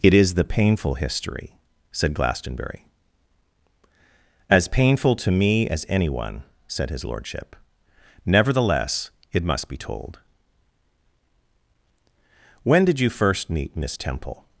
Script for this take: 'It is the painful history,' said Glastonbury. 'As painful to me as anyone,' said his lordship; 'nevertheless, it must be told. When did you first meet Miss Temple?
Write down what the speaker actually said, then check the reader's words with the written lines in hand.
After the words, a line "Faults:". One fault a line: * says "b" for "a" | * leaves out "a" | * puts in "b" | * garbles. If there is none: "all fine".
'It is the painful history,' said Glastonbury. 'As painful to me as anyone,' said his lordship; 'nevertheless, it must be told. When did you first meet Miss Temple?
Faults:
all fine